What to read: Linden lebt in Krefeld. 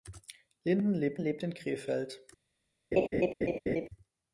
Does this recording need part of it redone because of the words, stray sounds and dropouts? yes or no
yes